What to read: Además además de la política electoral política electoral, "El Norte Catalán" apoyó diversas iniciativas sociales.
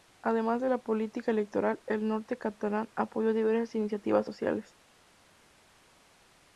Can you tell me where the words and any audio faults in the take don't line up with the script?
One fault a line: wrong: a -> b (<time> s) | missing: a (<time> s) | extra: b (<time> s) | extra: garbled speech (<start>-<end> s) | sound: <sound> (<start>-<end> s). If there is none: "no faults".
missing: además (0.6 s)
missing: política electoral (1.8 s)